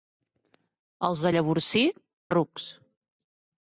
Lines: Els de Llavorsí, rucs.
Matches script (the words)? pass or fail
pass